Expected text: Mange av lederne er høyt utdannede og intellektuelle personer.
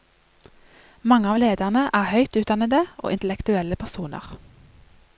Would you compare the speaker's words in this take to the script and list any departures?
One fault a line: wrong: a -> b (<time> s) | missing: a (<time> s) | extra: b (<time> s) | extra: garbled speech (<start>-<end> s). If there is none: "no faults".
no faults